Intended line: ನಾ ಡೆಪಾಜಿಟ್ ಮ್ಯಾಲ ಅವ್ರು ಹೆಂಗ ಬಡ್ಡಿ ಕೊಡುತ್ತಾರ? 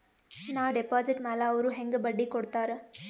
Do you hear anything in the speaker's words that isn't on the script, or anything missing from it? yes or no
no